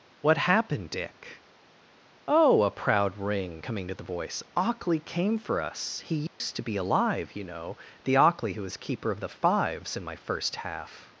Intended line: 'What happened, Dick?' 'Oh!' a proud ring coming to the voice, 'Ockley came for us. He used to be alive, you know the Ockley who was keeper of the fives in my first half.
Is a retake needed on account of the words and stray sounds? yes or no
yes